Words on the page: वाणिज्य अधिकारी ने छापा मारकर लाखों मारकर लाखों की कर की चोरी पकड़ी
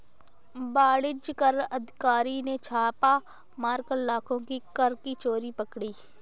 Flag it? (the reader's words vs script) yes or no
yes